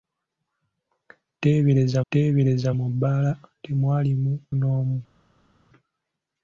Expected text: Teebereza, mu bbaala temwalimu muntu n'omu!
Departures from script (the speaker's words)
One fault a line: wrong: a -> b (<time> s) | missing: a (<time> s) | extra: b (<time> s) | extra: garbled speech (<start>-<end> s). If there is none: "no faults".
extra: teebereza (2.1 s)
missing: muntu (4.3 s)